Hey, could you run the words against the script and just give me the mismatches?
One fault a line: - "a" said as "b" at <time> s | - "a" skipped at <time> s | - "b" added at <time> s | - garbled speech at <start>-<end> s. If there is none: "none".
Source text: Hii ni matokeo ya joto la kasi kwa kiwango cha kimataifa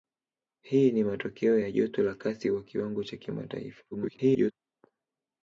- garbled speech at 3.9-4.5 s